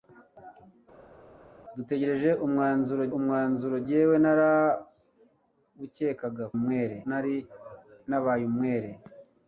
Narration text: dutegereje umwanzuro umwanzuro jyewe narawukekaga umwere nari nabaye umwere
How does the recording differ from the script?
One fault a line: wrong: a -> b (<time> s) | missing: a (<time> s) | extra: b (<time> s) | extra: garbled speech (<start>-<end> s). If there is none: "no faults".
no faults